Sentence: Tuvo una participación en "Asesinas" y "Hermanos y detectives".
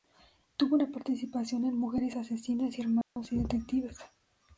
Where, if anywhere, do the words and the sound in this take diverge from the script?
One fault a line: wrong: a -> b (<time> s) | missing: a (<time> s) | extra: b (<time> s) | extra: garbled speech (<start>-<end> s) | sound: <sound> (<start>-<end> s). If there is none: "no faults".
extra: Mujeres (1.8 s)
sound: dropout (3.0-3.2 s)